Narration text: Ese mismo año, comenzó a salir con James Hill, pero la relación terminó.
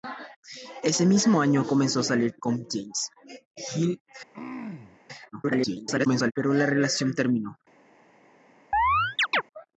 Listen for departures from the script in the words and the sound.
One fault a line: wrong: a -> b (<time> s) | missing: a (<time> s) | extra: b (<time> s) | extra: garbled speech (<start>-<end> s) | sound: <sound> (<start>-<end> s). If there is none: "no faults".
sound: throat clearing (4.3-5.0 s)
extra: garbled speech (5.3-6.3 s)
sound: chirp (8.7-9.4 s)